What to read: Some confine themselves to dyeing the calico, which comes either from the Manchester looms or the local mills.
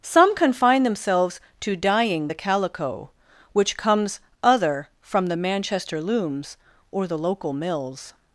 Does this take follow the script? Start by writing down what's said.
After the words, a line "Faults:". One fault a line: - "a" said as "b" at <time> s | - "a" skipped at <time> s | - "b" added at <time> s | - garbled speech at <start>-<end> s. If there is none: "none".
Some confine themselves to dyeing the calico, which comes other from the Manchester looms or the local mills.
Faults:
- "either" said as "other" at 4.4 s